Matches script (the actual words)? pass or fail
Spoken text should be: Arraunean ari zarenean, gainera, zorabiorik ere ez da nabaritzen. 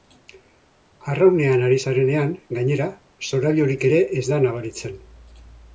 pass